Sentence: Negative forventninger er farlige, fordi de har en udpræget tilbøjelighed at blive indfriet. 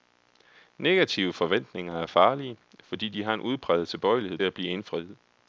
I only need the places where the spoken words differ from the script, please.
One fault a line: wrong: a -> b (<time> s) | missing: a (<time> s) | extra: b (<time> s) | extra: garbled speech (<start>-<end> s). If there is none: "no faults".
no faults